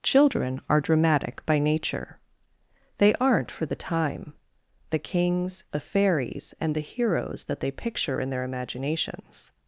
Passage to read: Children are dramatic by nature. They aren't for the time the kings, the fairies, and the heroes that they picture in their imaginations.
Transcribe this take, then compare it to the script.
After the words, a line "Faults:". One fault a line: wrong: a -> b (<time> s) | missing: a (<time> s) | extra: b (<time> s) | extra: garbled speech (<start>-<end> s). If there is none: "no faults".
Children are dramatic by nature. They aren't for the time the kings, the fairies, and the heroes that they picture in their imaginations.
Faults:
no faults